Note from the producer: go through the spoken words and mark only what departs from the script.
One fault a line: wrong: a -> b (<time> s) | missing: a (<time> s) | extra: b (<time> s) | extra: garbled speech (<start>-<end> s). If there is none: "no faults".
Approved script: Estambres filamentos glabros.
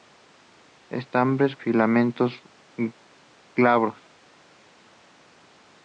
no faults